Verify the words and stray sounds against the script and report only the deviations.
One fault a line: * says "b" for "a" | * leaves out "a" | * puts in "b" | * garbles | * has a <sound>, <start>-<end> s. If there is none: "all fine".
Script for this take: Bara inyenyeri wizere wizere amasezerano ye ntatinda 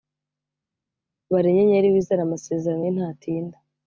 * leaves out "wizere"